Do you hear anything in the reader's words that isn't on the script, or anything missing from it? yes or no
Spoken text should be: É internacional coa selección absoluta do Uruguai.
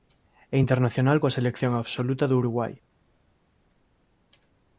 no